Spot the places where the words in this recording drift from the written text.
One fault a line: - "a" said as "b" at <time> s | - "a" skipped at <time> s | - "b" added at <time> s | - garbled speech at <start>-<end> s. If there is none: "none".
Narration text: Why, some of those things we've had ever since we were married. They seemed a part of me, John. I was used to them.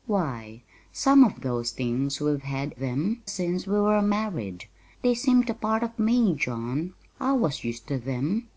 - "ever" said as "them" at 2.7 s